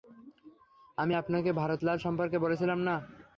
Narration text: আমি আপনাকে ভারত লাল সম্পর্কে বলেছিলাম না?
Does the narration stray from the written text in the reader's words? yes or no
no